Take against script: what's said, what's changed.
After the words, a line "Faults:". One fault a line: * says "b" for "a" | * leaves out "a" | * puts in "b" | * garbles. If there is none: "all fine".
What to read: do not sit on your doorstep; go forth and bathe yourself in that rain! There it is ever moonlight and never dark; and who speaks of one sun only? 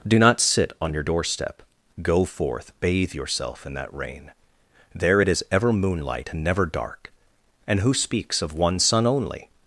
do not sit on your doorstep; go forth bathe yourself in that rain! There it is ever moonlight and never dark; and who speaks of one sun only?
Faults:
* leaves out "and"